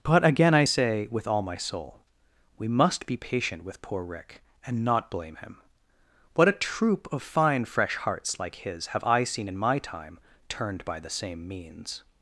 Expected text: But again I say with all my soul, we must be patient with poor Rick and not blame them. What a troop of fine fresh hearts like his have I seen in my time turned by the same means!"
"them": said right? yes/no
no